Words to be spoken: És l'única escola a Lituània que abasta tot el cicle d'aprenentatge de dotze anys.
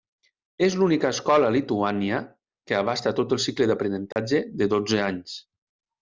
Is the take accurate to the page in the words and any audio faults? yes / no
no